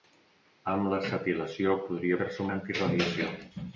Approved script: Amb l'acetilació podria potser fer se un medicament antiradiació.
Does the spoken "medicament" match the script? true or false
false